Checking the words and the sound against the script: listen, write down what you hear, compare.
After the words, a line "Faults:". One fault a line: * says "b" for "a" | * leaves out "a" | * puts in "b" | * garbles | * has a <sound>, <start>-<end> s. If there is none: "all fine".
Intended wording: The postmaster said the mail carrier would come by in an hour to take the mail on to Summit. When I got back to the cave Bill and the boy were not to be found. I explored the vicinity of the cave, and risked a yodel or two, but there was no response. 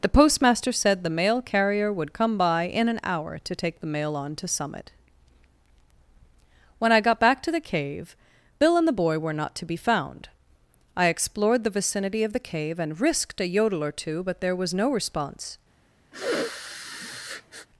The postmaster said the mail carrier would come by in an hour to take the mail on to Summit. When I got back to the cave Bill and the boy were not to be found. I explored the vicinity of the cave, and risked a yodel or two, but there was no response.
Faults:
* has a sniff, 16.1-17.7 s